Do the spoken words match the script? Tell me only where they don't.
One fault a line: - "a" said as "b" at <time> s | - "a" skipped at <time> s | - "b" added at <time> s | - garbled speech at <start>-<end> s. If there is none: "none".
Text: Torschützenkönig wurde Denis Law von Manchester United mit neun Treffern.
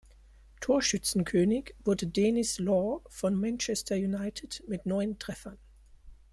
none